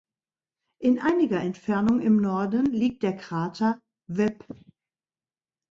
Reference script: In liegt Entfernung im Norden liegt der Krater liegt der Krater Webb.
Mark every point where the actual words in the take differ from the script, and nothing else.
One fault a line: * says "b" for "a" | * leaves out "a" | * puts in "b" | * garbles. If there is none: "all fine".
* says "einiger" for "liegt"
* leaves out "liegt der Krater"